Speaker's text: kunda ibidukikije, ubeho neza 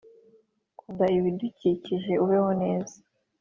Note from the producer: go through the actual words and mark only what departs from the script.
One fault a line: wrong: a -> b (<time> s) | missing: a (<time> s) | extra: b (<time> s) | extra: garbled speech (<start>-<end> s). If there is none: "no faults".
no faults